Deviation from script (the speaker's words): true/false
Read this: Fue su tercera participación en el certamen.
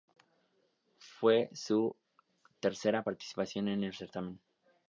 false